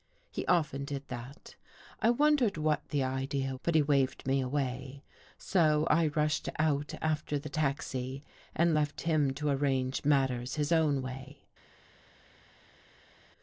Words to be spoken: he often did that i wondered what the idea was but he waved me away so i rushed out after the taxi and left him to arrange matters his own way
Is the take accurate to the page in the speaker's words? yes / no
no